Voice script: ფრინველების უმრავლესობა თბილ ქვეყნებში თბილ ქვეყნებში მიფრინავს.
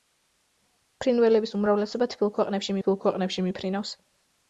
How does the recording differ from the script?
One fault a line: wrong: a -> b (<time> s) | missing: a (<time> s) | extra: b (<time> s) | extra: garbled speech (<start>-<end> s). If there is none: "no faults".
no faults